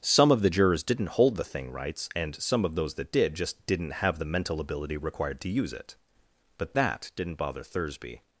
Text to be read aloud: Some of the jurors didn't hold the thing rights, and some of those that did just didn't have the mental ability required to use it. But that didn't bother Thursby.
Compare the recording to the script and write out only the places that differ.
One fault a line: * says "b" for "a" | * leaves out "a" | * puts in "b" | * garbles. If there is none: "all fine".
all fine